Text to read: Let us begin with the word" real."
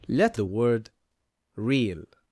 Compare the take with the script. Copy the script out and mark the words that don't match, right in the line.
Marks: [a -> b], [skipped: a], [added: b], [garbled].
Let [skipped: us begin with] the word" real."